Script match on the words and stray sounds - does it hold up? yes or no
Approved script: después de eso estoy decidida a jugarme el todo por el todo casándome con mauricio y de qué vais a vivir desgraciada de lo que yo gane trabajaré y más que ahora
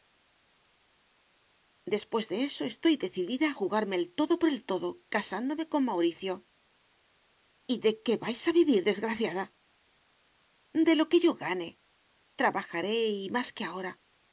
yes